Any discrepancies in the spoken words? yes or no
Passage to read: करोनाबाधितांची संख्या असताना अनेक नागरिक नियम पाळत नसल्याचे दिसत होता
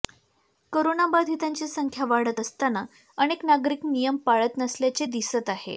yes